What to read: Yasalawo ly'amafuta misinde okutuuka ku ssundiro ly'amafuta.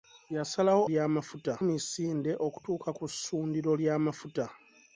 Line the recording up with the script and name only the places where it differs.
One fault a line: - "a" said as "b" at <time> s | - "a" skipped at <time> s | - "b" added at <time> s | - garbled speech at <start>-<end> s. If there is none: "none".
none